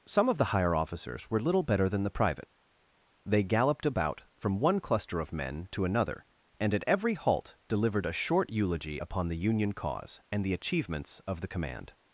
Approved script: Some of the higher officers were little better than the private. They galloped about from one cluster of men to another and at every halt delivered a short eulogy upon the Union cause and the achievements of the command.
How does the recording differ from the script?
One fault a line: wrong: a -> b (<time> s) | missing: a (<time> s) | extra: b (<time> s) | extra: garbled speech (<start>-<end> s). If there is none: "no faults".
no faults